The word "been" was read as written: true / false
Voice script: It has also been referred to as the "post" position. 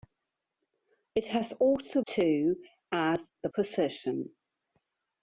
false